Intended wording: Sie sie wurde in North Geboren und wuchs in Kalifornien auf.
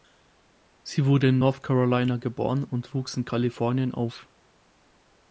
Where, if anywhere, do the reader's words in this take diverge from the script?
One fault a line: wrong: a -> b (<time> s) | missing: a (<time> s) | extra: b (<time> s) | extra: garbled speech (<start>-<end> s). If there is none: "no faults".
missing: sie (1.1 s)
extra: Carolina (1.6 s)